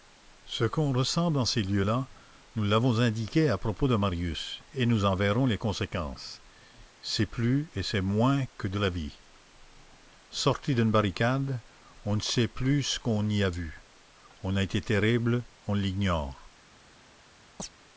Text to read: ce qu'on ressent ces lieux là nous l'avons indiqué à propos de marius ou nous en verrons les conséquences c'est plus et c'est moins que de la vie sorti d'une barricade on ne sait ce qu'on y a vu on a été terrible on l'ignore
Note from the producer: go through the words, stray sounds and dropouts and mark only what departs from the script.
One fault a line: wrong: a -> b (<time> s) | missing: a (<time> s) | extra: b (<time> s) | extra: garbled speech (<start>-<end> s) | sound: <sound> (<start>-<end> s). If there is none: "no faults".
extra: dans (1.3 s)
wrong: ou -> et (4.7 s)
extra: plus (12.5 s)
sound: chirp (17.6-17.7 s)